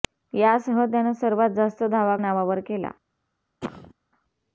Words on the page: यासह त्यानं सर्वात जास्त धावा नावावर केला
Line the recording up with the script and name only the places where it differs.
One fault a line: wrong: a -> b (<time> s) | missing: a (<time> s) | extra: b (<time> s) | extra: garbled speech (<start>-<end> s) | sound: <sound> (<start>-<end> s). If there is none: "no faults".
sound: cough (3.6-3.9 s)